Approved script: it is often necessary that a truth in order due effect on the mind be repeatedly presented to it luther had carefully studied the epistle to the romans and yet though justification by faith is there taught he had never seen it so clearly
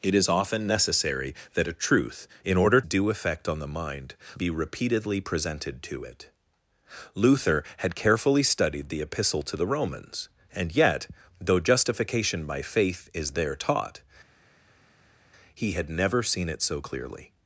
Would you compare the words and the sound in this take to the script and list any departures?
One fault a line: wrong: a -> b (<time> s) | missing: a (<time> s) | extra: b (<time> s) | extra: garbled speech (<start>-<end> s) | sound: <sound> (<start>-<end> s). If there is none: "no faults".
no faults